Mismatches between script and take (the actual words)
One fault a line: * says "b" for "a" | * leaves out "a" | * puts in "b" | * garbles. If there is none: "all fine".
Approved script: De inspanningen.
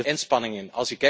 all fine